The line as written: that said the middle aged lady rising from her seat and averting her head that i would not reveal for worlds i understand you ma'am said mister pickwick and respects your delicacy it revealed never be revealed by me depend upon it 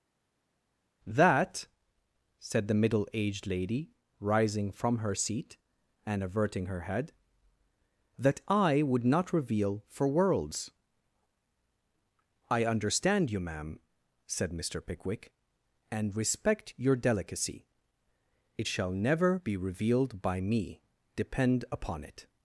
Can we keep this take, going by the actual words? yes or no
no